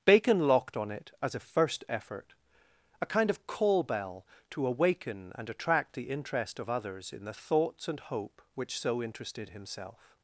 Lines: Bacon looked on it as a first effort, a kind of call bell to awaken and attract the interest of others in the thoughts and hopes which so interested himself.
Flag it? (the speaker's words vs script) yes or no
yes